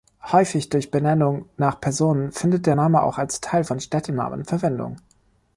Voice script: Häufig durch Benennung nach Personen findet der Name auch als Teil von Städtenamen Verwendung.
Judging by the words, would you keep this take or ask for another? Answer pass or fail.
pass